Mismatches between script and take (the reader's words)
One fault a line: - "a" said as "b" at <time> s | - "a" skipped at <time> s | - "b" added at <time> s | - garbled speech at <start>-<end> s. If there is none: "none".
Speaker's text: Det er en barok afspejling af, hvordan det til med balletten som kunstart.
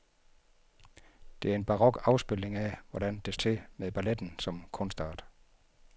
none